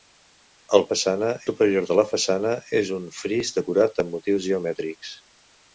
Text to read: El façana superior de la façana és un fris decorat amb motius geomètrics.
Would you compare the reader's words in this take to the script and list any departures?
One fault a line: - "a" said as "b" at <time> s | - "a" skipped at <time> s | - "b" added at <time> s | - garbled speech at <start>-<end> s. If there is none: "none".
none